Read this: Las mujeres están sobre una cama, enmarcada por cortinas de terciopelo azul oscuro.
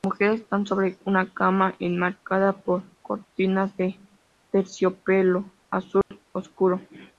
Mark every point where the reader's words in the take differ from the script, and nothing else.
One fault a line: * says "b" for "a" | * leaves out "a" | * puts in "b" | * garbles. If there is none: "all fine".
all fine